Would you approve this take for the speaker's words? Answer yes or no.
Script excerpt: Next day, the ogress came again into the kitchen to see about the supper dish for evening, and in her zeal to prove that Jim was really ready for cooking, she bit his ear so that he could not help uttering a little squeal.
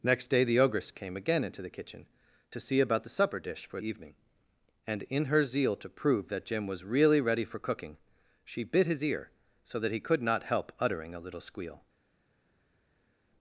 yes